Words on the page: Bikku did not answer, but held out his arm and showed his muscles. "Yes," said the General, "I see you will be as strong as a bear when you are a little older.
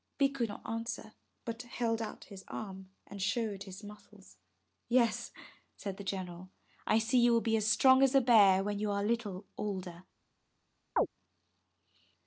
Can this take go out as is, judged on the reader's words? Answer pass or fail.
fail